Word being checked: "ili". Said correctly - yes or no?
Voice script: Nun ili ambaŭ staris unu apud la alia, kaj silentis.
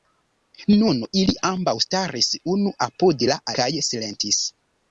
yes